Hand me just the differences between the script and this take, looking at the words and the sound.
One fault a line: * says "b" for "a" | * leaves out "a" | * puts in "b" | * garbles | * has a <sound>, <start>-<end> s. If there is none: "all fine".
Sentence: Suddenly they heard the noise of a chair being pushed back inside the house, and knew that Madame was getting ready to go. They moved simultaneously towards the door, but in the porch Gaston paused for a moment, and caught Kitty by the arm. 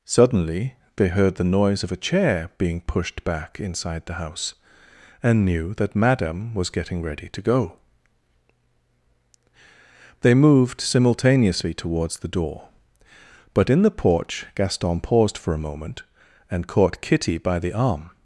all fine